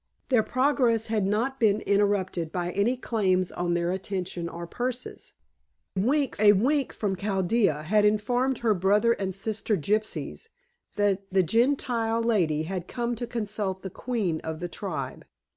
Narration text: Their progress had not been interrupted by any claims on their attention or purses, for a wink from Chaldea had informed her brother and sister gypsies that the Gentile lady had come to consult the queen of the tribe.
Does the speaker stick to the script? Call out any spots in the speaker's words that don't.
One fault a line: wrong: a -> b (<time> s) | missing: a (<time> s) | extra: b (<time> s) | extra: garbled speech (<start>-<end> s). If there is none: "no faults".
wrong: for -> wink (6.0 s)